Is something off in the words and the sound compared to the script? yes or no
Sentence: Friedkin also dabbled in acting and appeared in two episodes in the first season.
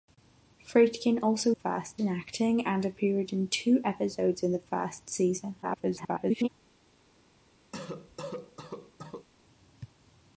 yes